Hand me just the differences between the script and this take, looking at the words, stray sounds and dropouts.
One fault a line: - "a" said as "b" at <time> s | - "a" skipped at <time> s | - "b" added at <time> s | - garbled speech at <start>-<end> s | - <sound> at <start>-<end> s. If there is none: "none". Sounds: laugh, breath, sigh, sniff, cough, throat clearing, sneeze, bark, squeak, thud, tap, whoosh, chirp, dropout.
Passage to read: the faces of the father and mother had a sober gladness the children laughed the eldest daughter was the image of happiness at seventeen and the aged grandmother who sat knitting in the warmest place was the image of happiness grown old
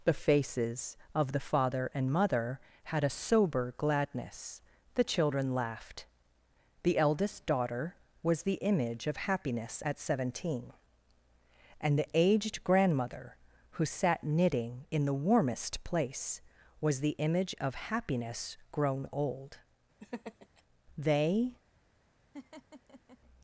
- laugh at 20.0-20.6 s
- "they" added at 21.0 s
- laugh at 22.3-23.2 s